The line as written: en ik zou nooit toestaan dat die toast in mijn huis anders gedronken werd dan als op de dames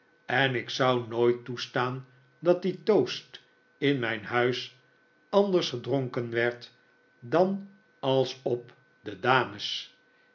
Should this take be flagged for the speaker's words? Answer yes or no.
no